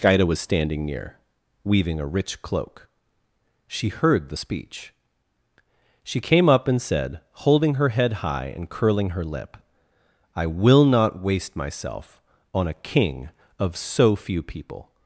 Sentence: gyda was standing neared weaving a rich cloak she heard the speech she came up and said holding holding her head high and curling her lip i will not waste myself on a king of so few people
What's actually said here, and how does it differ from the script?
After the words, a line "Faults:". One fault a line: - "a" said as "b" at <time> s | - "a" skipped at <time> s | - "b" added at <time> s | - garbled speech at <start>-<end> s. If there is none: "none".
gyda was standing near weaving a rich cloak she heard the speech she came up and said holding her head high and curling her lip i will not waste myself on a king of so few people
Faults:
- "neared" said as "near" at 0.8 s
- "holding" skipped at 7.7 s